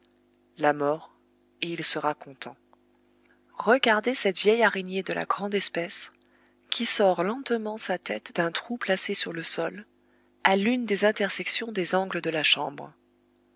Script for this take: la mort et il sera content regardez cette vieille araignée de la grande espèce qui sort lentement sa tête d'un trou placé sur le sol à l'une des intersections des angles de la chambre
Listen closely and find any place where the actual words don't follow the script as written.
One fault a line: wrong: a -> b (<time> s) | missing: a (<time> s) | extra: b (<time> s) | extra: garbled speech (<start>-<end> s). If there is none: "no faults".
no faults